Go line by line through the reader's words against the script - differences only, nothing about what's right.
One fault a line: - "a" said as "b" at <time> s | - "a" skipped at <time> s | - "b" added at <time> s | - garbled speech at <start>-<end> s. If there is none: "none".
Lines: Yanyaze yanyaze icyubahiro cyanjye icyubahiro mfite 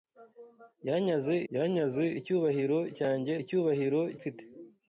none